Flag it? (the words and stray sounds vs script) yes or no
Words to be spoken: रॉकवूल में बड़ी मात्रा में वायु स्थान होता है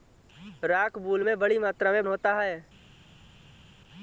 yes